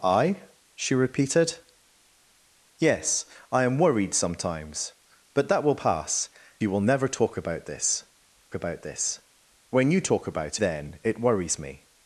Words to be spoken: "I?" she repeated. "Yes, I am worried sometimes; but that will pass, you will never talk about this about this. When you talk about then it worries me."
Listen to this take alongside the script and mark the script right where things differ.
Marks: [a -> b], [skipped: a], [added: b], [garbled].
"I?" she repeated. "Yes, I am worried sometimes; but that will pass, you will never talk about this about this. When you talk about then it worries me."